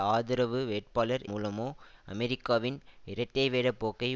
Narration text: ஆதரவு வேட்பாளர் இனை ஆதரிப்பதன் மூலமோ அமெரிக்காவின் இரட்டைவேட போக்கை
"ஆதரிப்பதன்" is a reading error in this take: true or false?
true